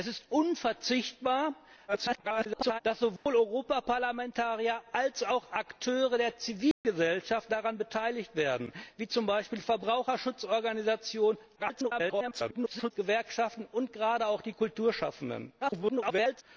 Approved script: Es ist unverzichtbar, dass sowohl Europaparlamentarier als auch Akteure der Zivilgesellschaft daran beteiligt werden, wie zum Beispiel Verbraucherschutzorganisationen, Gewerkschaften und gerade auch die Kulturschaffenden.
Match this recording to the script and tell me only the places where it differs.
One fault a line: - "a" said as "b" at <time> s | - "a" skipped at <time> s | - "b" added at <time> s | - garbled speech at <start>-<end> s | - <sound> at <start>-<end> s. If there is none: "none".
- garbled speech at 1.9-2.8 s
- dropout at 3.2-3.3 s
- dropout at 6.7-6.8 s
- garbled speech at 11.6-12.9 s
- garbled speech at 15.6-16.4 s